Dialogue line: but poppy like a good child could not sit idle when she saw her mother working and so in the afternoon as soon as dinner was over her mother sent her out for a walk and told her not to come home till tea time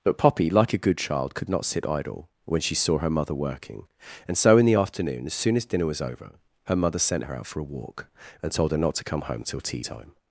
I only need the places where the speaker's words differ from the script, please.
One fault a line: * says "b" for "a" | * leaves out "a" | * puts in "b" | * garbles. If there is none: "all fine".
all fine